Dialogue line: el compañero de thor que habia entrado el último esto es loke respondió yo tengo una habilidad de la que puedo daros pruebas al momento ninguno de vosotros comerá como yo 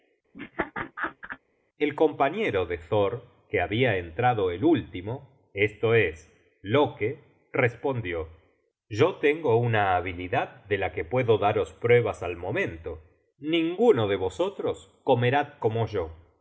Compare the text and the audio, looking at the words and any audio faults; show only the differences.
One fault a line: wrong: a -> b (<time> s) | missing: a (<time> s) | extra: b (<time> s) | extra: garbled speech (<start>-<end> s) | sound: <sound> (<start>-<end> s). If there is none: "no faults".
sound: laugh (0.3-1.4 s)